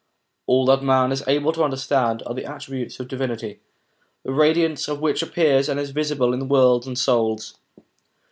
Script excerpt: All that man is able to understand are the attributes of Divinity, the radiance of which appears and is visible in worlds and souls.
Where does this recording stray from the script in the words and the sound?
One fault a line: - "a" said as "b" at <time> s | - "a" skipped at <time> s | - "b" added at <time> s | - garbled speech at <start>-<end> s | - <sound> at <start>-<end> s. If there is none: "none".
none